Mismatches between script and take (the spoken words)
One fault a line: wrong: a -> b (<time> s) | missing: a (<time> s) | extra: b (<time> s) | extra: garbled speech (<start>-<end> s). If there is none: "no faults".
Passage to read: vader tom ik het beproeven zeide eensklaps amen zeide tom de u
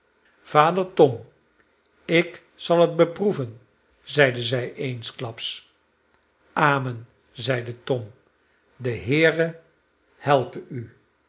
extra: zal (2.5 s)
extra: zij (4.4 s)
extra: heere helpe (8.9 s)